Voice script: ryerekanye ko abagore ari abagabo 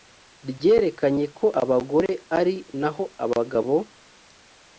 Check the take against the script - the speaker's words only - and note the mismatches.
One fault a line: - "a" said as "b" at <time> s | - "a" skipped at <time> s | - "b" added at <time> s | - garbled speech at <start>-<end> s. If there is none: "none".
- "naho" added at 2.8 s